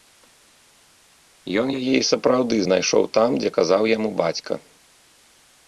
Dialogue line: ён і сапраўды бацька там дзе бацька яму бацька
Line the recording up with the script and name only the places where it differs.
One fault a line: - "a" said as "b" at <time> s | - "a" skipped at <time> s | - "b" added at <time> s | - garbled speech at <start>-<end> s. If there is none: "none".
- "яе" added at 1.8 s
- "бацька" said as "знайшоў" at 2.7 s
- "бацька" said as "казаў" at 3.6 s